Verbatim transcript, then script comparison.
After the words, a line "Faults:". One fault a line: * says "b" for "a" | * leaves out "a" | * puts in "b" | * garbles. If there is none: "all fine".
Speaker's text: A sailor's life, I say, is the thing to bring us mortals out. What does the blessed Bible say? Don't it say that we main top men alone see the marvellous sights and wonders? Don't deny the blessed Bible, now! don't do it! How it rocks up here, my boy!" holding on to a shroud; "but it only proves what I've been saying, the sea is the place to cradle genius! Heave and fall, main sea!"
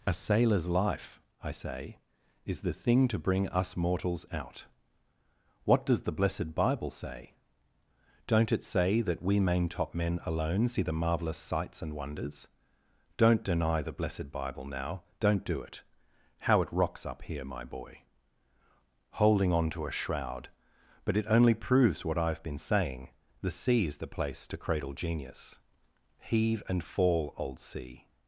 A sailor's life, I say, is the thing to bring us mortals out. What does the blessed Bible say? Don't it say that we main top men alone see the marvellous sights and wonders? Don't deny the blessed Bible, now! don't do it! How it rocks up here, my boy!" holding on to a shroud; "but it only proves what I've been saying, the sea is the place to cradle genius! Heave and fall, old sea!"
Faults:
* says "old" for "main"